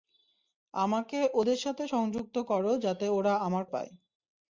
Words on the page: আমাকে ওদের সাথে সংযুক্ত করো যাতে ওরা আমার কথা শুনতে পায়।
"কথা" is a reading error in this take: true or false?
true